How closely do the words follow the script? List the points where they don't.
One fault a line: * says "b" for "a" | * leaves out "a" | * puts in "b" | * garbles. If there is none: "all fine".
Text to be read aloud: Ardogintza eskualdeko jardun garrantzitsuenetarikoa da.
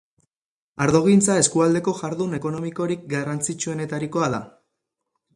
* puts in "ekonomikorik"